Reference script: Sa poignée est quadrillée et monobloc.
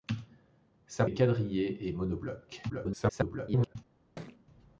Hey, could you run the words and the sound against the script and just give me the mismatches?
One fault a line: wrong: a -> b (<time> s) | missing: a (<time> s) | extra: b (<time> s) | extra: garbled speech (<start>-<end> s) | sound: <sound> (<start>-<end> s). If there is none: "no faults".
missing: poignée (1.1 s)
extra: garbled speech (2.7-3.8 s)
sound: thud (4.2-4.5 s)